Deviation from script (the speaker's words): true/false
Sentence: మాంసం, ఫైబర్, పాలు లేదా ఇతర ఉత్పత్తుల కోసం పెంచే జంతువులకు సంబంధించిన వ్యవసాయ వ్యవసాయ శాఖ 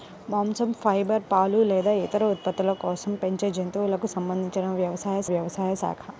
false